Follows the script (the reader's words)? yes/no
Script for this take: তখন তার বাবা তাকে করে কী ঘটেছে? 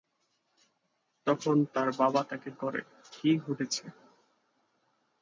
yes